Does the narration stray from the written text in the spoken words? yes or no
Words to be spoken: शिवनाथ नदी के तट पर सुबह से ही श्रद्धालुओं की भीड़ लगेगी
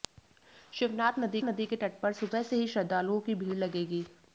yes